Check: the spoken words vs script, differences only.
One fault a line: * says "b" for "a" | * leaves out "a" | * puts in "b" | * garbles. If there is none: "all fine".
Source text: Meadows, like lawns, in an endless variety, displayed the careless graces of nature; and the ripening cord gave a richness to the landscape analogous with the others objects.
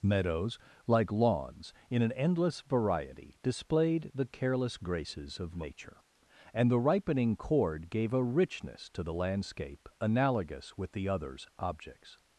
all fine